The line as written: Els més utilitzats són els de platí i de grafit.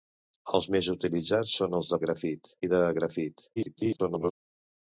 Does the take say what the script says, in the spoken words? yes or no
no